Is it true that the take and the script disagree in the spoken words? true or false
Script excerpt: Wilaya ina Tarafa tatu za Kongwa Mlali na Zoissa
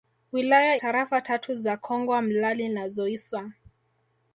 true